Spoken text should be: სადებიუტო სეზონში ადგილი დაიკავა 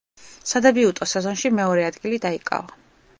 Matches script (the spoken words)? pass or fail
fail